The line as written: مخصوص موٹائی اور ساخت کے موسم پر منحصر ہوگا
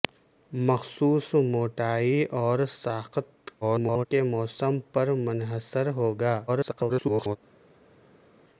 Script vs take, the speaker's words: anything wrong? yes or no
yes